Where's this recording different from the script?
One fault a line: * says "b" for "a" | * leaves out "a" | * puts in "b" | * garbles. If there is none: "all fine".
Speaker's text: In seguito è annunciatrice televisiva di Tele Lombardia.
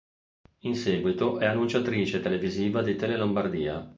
all fine